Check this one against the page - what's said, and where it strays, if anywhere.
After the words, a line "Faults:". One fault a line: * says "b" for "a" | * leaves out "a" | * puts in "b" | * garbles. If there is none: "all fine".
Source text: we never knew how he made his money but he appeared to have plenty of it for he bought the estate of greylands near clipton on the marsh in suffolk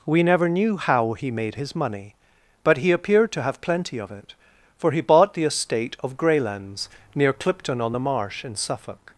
we never knew how he made his money but he appeared to have plenty of it for he bought the estate of greylands near clipton on the marsh in suffolk
Faults:
all fine